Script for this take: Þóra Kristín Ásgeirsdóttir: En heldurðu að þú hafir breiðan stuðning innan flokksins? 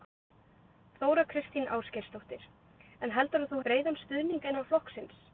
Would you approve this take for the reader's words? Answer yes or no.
no